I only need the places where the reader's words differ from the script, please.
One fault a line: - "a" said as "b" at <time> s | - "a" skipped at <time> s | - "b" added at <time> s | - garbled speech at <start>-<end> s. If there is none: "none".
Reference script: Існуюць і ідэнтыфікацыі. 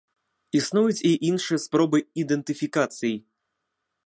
- "іншыя спробы" added at 1.3 s